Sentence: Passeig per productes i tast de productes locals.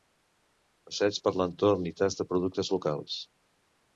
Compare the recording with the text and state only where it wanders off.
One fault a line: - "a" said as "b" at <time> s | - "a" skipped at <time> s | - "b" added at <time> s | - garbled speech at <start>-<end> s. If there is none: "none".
- "productes" said as "l'entorn" at 1.4 s